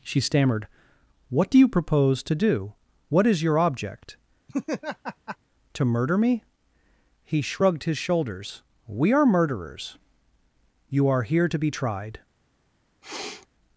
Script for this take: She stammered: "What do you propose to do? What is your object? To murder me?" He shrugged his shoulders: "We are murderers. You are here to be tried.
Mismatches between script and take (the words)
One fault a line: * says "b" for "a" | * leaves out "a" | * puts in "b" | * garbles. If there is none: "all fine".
all fine